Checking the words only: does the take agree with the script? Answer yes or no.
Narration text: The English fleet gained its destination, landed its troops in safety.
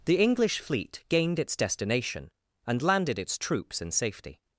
no